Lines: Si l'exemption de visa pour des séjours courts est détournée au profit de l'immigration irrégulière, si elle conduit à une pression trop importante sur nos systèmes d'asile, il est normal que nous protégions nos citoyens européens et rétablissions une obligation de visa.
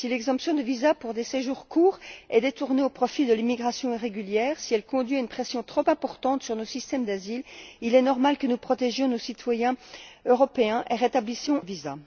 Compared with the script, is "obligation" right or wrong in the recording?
wrong